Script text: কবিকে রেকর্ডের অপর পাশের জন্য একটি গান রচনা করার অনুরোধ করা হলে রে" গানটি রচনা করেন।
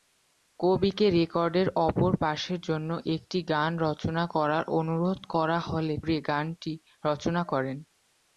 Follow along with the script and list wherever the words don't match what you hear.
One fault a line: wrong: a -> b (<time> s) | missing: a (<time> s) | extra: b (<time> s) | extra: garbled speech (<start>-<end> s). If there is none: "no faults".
no faults